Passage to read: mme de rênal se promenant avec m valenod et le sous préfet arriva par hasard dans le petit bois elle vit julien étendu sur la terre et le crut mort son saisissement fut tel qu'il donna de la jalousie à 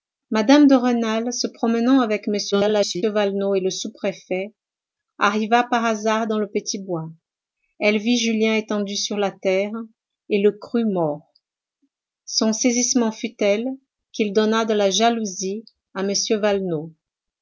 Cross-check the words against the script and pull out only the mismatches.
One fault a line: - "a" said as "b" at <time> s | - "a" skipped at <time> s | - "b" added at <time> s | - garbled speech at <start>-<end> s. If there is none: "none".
- garbled speech at 2.5-3.0 s